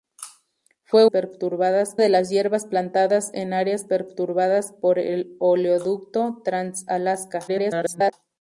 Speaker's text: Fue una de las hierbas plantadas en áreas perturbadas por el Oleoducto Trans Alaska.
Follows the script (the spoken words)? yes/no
no